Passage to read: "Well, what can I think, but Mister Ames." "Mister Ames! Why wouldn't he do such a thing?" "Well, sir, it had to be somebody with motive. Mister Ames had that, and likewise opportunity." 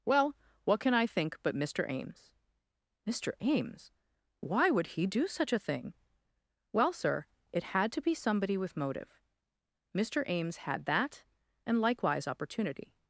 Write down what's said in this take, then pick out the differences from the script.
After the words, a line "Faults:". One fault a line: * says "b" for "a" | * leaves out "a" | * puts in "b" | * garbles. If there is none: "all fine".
"Well, what can I think, but Mister Ames." "Mister Ames! Why would he do such a thing?" "Well, sir, it had to be somebody with motive. Mister Ames had that, and likewise opportunity."
Faults:
* says "would" for "wouldn't"